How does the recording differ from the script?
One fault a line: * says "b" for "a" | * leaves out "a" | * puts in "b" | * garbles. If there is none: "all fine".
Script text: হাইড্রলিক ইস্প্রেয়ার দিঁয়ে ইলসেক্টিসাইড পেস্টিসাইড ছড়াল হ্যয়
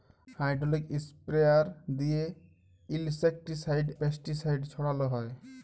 all fine